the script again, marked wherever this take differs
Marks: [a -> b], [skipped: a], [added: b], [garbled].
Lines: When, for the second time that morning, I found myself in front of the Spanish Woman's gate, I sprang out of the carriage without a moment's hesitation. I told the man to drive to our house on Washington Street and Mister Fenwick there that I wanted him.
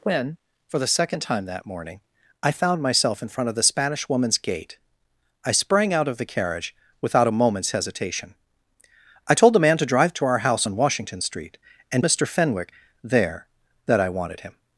When, for the second time that morning, I found myself in front of the Spanish Woman's gate, I sprang out of the carriage without a moment's hesitation. I told the man to drive to our house on Washington Street and Mister Fenwick there that I wanted him.